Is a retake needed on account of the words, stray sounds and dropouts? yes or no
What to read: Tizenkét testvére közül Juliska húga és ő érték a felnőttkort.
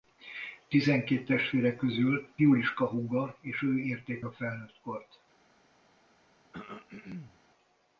yes